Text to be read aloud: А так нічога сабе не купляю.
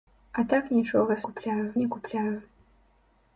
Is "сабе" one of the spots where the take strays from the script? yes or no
yes